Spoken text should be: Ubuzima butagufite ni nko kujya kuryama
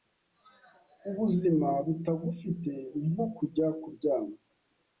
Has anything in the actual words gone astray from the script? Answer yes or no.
no